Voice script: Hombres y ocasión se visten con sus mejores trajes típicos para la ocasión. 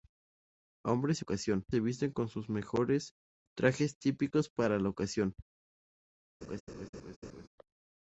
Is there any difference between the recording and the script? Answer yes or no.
no